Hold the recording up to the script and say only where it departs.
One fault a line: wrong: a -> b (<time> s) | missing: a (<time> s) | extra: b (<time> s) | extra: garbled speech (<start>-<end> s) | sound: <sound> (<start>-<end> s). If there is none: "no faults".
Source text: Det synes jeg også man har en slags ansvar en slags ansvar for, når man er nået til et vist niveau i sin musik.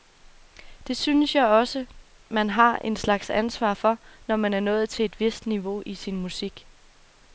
missing: en slags ansvar (3.7 s)